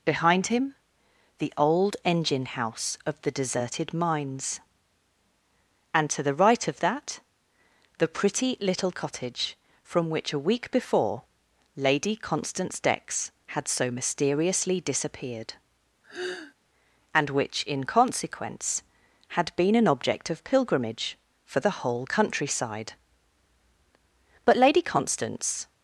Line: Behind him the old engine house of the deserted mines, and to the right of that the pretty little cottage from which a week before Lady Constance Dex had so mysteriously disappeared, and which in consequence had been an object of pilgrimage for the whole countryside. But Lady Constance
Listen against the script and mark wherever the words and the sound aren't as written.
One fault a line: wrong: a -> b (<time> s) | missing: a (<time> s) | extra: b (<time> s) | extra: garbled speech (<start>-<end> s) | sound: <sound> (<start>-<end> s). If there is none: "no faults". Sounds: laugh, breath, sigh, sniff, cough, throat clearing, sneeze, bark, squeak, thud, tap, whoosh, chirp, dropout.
sound: sigh (16.0-16.5 s)